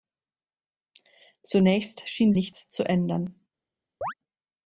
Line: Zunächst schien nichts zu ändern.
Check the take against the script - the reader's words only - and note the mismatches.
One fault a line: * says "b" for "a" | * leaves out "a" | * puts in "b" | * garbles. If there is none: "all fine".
all fine